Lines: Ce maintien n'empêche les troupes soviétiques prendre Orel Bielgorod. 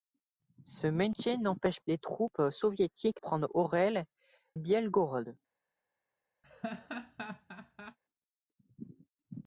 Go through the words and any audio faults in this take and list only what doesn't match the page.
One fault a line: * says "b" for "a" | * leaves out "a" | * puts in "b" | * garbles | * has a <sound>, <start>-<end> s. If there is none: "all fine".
* has a laugh, 6.4-8.0 s